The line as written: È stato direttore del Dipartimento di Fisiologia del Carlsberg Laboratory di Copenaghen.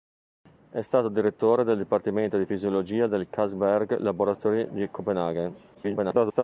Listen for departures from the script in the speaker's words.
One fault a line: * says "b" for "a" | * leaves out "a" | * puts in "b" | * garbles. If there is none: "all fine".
* garbles